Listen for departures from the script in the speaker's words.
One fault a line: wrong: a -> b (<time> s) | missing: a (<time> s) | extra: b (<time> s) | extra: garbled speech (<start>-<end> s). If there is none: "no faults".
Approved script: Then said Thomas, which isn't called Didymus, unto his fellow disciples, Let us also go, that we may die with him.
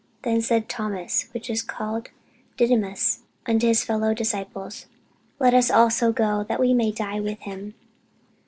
wrong: isn't -> is (1.5 s)